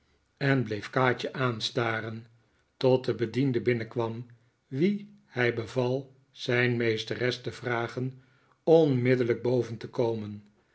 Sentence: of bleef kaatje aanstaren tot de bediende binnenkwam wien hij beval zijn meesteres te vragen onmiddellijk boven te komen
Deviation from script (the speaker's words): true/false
true